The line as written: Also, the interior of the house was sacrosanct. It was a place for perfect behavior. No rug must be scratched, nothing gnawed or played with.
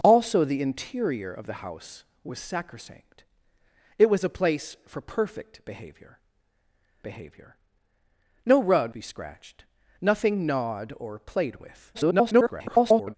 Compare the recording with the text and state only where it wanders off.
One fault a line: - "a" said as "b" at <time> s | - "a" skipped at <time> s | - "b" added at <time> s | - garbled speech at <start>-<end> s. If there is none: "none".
- "behavior" added at 7.0 s
- "must" skipped at 9.0 s
- garbled speech at 11.9-13.2 s